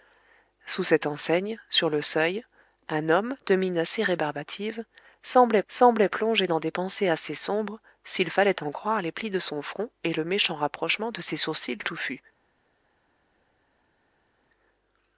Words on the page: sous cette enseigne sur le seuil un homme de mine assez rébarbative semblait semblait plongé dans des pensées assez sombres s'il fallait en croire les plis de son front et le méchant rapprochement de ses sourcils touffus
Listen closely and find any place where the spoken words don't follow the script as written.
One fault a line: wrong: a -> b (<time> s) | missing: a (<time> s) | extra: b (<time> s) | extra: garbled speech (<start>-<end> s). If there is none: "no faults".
no faults